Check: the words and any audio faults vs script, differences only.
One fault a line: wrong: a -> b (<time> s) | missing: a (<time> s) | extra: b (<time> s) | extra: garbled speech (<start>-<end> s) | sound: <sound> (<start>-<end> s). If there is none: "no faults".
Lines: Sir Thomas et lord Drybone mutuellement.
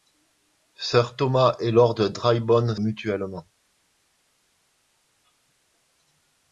no faults